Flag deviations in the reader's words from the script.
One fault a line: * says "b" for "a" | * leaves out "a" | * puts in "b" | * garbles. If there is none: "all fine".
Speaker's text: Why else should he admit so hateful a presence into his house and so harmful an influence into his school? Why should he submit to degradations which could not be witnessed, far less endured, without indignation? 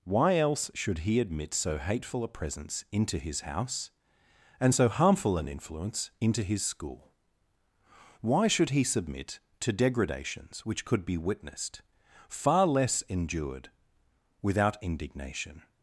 * leaves out "not"